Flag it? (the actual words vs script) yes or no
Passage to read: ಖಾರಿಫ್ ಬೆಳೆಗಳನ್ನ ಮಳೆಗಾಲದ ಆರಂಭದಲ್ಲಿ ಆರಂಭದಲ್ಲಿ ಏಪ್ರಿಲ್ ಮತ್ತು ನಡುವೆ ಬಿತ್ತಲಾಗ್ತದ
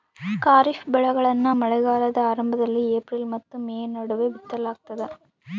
yes